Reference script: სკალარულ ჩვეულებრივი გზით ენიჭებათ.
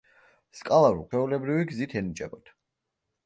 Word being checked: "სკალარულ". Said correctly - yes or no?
yes